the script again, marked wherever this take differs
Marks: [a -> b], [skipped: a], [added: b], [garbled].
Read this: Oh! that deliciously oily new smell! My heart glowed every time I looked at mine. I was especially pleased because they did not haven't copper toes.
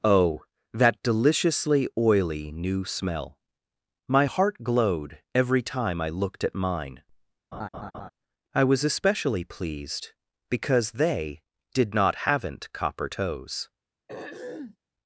Oh! that deliciously oily new smell! My heart glowed every time I looked at mine. I was especially pleased because they did not haven't copper toes.